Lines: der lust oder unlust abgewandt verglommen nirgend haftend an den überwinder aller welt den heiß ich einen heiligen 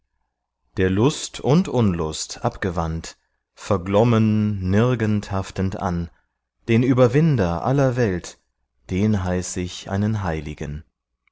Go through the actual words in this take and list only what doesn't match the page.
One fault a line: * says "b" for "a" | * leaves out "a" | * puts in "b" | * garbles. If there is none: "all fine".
* says "und" for "oder"